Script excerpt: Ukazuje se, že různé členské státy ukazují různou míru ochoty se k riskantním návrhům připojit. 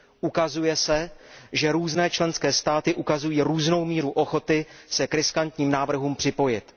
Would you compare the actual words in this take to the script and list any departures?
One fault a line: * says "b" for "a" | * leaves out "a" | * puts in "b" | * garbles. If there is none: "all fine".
all fine